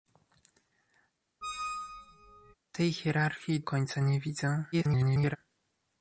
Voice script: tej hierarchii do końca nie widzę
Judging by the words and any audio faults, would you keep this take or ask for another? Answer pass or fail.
fail